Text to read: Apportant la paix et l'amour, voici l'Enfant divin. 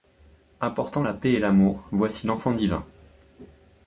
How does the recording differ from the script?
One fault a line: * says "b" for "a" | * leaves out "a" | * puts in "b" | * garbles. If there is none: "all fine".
all fine